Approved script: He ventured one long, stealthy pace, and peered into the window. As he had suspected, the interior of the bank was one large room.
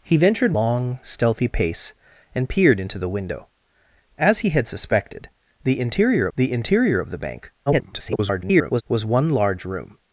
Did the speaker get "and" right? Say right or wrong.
right